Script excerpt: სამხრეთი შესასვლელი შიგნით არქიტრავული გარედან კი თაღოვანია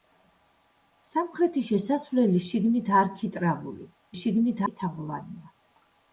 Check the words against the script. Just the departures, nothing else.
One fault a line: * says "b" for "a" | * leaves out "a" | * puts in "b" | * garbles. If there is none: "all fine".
* says "შიგნით" for "გარედან"